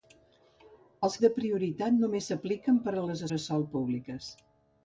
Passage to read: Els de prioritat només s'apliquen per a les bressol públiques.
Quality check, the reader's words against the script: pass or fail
pass